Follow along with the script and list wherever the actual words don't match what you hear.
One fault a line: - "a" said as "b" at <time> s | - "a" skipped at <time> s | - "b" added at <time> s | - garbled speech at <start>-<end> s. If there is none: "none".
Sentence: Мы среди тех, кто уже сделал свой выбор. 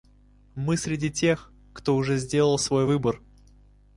none